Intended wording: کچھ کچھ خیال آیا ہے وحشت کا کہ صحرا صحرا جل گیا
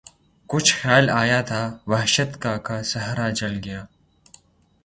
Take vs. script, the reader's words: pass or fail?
fail